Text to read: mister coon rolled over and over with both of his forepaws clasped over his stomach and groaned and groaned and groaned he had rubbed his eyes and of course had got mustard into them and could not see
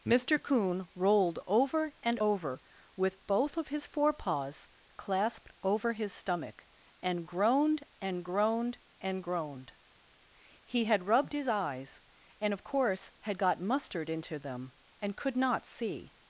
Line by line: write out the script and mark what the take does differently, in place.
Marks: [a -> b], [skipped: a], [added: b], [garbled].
mister coon rolled over and over with both of his forepaws clasped over his stomach and groaned and groaned and groaned he had rubbed his eyes and of course had got mustard into them and could not see